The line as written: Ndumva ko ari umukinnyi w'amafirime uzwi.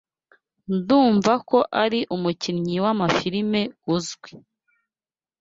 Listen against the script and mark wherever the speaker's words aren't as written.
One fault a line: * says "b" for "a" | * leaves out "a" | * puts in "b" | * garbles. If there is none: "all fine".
all fine